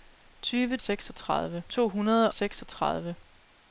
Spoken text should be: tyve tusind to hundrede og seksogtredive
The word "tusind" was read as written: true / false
false